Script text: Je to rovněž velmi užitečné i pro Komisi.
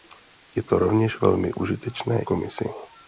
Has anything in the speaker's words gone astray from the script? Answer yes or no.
yes